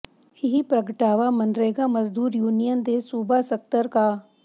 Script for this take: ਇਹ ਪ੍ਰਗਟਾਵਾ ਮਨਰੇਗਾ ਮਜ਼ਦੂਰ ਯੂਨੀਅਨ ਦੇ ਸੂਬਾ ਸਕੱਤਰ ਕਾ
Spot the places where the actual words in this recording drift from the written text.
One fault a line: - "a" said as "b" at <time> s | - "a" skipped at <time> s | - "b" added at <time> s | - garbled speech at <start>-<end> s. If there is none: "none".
none